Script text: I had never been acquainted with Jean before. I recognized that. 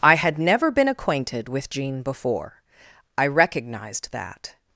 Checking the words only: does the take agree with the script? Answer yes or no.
yes